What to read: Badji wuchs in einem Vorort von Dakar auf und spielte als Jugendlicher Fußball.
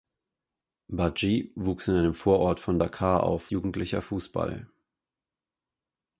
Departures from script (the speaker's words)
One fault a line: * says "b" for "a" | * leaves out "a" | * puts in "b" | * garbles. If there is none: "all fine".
* leaves out "und spielte als"